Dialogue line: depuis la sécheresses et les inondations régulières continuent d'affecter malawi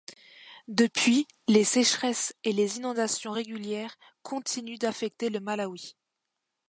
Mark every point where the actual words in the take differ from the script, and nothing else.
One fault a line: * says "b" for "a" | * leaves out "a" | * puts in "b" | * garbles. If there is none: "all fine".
* says "les" for "la"
* puts in "le"